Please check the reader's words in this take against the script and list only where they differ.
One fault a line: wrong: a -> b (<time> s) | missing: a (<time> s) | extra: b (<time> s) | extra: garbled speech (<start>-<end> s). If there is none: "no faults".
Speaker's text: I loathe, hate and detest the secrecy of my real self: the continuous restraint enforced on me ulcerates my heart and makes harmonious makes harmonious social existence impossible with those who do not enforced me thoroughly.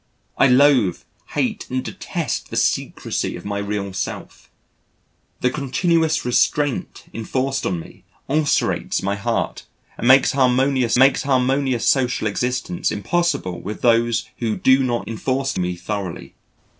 no faults